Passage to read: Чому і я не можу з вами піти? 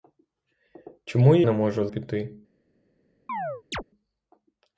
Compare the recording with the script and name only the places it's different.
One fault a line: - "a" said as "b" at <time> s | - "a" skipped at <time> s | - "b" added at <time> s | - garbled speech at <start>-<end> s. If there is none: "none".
- "я" skipped at 1.4 s
- "вами" skipped at 1.9 s